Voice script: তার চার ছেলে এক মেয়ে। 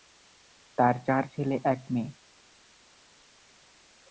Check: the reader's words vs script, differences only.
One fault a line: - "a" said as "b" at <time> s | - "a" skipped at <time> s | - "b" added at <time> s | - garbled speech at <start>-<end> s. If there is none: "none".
none